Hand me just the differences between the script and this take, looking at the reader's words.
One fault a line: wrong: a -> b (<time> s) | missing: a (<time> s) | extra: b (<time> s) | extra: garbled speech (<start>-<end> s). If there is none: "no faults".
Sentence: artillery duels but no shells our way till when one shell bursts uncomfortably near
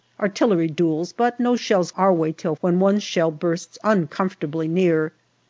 no faults